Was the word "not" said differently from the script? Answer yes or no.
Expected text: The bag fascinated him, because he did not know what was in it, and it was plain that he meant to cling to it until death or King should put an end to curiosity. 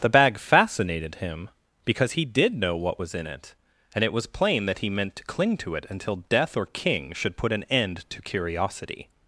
yes